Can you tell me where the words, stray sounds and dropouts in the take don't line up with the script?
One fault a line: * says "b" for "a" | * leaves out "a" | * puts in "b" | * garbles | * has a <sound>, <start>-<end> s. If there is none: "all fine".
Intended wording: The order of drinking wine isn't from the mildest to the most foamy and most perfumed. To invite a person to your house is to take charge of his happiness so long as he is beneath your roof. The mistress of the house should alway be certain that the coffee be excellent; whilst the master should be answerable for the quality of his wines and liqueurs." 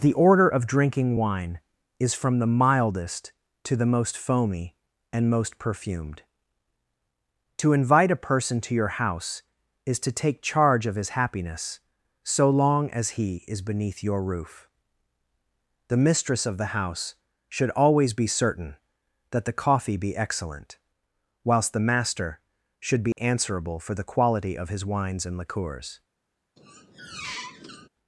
* says "is" for "isn't"
* says "always" for "alway"
* has a dropout, 23.1-23.2 s
* has a squeak, 26.6-27.9 s